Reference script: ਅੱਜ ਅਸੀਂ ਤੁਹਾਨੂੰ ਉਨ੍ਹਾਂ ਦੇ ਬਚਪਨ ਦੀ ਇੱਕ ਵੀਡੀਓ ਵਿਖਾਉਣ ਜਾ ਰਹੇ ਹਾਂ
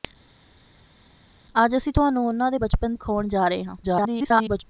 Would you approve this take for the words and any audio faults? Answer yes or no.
no